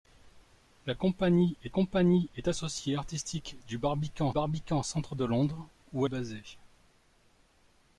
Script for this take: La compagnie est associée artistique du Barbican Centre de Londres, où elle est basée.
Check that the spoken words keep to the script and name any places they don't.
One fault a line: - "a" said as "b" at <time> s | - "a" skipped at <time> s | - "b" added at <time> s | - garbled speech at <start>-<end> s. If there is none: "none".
- "compagnie est" added at 1.7 s
- "Barbican" added at 4.3 s
- "elle" skipped at 6.0 s